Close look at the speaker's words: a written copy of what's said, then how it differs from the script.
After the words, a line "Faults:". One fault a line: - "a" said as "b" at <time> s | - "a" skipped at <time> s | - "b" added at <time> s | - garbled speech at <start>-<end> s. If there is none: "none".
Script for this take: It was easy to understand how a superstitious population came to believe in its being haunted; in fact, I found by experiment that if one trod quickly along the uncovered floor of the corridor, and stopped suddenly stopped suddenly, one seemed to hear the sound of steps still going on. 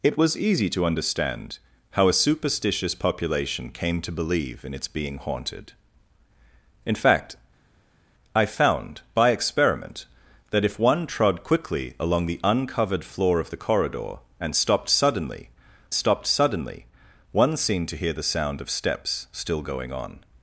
It was easy to understand how a superstitious population came to believe in its being haunted; in fact, I found by experiment that if one trod quickly along the uncovered floor of the corridor, and stopped suddenly stopped suddenly, one seemed to hear the sound of steps still going on.
Faults:
none